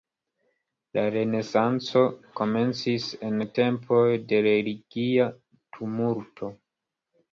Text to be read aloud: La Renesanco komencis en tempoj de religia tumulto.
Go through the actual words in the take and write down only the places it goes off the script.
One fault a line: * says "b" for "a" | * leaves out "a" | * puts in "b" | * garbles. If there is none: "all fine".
all fine